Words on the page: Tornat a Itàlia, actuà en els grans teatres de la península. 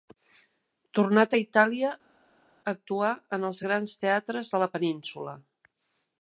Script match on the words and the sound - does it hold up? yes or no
yes